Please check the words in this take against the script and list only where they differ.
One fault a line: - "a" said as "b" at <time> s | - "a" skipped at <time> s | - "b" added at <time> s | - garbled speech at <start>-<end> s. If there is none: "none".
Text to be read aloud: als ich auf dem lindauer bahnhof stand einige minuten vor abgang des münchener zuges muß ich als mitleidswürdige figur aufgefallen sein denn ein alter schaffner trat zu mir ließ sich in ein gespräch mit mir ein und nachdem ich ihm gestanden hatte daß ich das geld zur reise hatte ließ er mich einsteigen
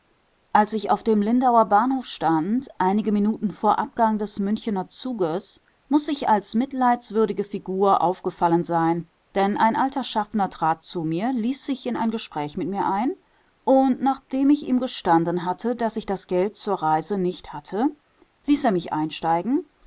- "nicht" added at 17.2 s